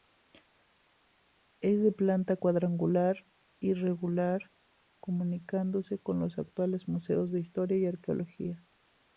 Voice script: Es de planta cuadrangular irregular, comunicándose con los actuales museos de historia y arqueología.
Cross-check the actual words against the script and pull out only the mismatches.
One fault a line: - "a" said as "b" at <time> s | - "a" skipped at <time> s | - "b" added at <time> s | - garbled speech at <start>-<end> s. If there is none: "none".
none